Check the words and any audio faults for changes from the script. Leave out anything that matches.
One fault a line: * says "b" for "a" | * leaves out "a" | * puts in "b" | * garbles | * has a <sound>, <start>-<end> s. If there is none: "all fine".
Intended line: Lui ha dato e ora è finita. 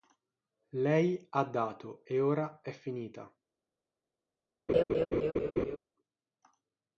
* says "Lei" for "Lui"
* has a laugh, 4.7-5.8 s